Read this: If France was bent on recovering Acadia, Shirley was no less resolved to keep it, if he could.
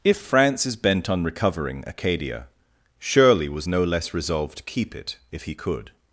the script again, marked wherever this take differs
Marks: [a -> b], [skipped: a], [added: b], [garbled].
If France [was -> is] bent on recovering Acadia, Shirley was no less resolved to keep it, if he could.